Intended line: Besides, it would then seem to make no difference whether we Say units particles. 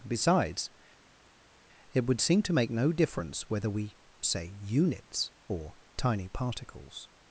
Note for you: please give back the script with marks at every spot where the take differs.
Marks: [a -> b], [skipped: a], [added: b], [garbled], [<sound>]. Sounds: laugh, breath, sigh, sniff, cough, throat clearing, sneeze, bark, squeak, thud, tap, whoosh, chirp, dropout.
Besides, it would [skipped: then] seem to make no difference whether we Say units [added: or tiny] particles.